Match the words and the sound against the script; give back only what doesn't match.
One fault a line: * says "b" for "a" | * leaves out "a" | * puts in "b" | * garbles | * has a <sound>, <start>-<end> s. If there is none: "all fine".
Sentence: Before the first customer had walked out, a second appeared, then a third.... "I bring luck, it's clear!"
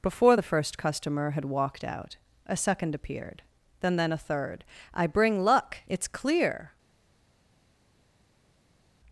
* puts in "then"